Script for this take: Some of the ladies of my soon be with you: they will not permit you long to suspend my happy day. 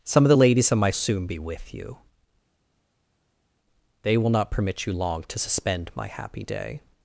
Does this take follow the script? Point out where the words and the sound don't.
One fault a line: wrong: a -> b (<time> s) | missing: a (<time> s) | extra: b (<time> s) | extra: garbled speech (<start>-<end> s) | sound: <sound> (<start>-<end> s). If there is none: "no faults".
no faults